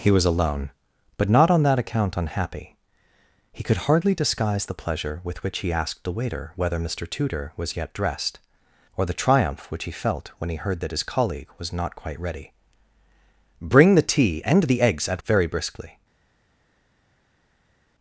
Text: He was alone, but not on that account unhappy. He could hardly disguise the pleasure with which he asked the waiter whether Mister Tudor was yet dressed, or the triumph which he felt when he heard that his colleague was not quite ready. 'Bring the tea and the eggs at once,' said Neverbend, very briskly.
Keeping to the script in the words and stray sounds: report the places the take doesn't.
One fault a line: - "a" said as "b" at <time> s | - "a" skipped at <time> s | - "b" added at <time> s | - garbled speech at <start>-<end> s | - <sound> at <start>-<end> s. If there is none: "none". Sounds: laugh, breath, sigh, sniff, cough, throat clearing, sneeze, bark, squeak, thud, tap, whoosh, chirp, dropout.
- "once said Neverbend" skipped at 15.2 s